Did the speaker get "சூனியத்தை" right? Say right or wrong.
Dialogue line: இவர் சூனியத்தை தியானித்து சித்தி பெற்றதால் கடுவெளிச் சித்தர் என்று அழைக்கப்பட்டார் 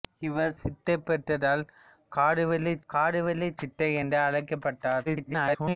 wrong